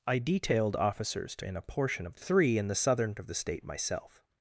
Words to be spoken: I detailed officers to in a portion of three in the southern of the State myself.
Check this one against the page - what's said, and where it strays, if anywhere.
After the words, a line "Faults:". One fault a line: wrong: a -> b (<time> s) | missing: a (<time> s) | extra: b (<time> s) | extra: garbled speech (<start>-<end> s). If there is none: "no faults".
I detailed officers to in a portion of three in the southern of the State myself.
Faults:
no faults